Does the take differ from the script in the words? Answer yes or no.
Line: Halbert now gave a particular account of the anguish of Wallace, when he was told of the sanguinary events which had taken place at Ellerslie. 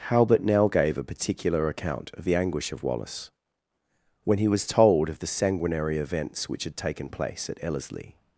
no